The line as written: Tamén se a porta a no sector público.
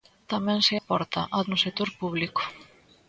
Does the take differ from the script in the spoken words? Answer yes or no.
no